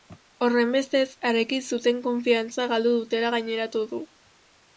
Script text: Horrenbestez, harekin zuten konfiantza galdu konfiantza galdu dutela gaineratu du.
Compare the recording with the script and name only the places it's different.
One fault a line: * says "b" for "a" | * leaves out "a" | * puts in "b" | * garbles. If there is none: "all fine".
* leaves out "konfiantza galdu"